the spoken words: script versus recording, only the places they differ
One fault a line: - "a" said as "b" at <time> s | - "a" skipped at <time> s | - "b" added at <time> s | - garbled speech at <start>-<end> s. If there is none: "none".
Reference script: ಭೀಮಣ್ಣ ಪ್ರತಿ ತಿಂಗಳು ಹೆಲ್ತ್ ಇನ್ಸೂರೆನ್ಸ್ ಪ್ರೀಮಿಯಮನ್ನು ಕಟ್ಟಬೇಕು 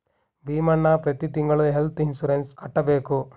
- "ಪ್ರೀಮಿಯಮನ್ನು" skipped at 2.5 s